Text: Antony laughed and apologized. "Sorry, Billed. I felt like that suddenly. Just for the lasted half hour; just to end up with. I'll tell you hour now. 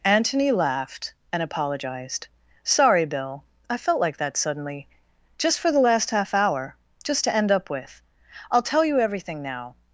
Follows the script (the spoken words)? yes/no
no